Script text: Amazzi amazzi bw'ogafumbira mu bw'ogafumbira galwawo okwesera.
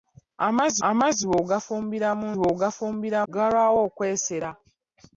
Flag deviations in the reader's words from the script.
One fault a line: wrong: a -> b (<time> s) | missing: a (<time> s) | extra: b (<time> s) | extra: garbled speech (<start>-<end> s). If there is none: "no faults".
no faults